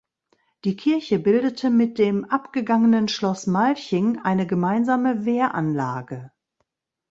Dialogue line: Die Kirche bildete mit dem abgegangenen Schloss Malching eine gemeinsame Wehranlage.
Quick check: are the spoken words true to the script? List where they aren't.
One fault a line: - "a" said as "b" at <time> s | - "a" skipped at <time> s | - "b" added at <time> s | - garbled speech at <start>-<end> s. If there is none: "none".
none